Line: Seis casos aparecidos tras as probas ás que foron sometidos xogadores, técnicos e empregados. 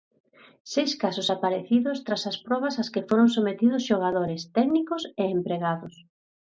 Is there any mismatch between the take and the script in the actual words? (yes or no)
no